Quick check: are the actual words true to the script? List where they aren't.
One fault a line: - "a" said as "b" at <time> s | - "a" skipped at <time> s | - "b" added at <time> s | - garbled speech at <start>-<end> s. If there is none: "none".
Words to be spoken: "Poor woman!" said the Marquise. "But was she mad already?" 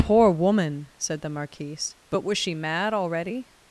none